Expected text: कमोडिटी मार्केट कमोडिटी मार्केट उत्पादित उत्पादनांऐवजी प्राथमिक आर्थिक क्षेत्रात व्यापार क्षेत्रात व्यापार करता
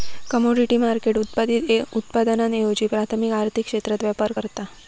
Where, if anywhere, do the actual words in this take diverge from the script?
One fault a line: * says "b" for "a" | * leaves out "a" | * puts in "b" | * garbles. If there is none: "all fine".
* leaves out "कमोडिटी मार्केट"
* leaves out "क्षेत्रात व्यापार"